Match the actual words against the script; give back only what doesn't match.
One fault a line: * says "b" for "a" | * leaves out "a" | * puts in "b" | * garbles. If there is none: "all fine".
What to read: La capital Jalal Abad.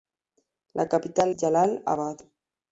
all fine